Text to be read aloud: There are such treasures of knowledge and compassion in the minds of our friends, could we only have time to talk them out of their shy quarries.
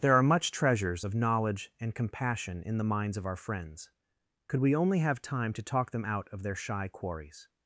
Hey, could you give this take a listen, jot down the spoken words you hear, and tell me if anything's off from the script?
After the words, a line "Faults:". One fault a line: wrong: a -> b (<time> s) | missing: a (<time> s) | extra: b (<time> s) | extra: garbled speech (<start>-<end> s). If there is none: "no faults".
There are much treasures of knowledge and compassion in the minds of our friends, could we only have time to talk them out of their shy quarries.
Faults:
wrong: such -> much (0.2 s)